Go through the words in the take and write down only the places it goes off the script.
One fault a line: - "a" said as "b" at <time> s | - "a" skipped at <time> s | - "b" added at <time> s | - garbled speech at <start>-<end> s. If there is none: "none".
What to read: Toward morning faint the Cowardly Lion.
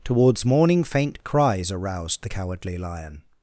- "Toward" said as "Towards" at 0.0 s
- "cries aroused" added at 1.2 s